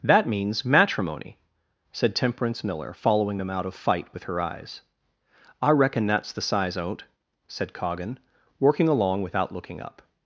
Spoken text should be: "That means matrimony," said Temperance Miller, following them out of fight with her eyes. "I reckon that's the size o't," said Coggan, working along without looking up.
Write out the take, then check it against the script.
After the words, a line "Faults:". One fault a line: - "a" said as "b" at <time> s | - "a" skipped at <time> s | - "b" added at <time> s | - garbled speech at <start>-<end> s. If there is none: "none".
"That means matrimony," said Temperance Miller, following them out of fight with her eyes. "I reckon that's the size o't," said Coggan, working along without looking up.
Faults:
none